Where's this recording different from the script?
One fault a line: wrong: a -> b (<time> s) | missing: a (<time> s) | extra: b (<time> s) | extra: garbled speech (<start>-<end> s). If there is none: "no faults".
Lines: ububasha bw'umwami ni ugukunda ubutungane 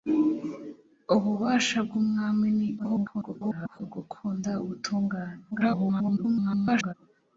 extra: garbled speech (2.8-3.8 s)
extra: garbled speech (5.5-6.9 s)